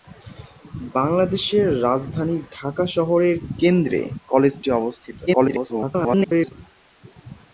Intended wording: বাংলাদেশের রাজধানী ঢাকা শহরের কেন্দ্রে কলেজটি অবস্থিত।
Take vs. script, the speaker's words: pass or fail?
fail